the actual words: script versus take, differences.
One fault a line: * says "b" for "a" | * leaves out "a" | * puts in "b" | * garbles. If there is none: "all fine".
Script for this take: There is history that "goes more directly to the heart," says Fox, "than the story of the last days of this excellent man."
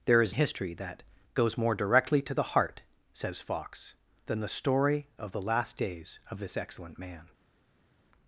all fine